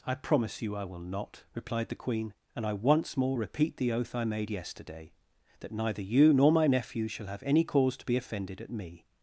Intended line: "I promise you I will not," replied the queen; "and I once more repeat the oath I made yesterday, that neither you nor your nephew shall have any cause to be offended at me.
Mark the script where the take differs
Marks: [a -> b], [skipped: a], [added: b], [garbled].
"I promise you I will not," replied the queen; "and I once more repeat the oath I made yesterday, that neither you nor [your -> my] nephew shall have any cause to be offended at me.